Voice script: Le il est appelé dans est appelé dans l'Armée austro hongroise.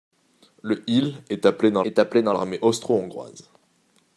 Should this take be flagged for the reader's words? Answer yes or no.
no